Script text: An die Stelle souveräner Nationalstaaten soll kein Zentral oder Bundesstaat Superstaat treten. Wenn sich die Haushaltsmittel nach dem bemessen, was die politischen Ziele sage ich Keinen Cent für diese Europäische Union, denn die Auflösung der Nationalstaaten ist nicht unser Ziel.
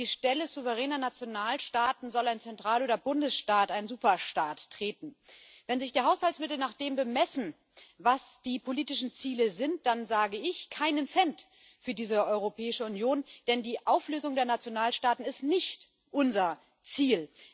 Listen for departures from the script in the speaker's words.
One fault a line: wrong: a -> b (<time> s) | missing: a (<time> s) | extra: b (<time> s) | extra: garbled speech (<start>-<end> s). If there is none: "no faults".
wrong: kein -> ein (2.3 s)
extra: ein (3.7 s)
extra: sind dann (9.5 s)